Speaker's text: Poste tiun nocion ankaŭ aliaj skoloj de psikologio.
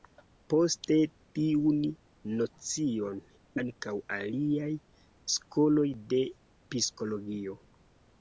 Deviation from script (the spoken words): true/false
false